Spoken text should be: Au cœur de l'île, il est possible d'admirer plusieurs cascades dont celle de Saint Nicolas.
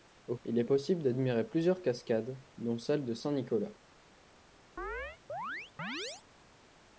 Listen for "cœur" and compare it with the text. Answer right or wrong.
wrong